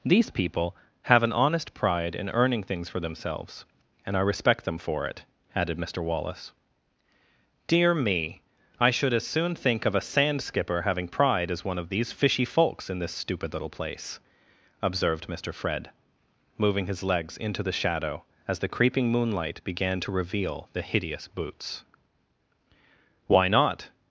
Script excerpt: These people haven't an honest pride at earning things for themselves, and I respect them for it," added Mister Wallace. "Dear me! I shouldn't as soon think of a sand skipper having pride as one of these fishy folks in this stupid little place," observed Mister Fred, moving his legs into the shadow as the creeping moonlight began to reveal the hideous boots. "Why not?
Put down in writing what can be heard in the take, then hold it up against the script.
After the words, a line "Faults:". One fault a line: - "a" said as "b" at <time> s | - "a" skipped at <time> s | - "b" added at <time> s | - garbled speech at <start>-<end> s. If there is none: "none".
These people have an honest pride in earning things for themselves, and I respect them for it," added Mister Wallace. "Dear me! I should as soon think of a sand skipper having pride as one of these fishy folks in this stupid little place," observed Mister Fred, moving his legs into the shadow as the creeping moonlight began to reveal the hideous boots. "Why not?
Faults:
- "haven't" said as "have" at 1.0 s
- "at" said as "in" at 2.1 s
- "shouldn't" said as "should" at 8.9 s